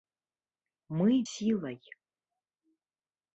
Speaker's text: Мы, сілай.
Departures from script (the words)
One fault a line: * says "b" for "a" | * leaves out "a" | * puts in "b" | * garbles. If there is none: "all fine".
all fine